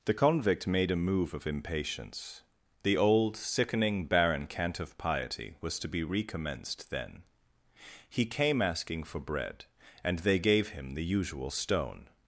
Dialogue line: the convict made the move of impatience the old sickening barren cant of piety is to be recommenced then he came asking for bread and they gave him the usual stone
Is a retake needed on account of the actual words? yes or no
yes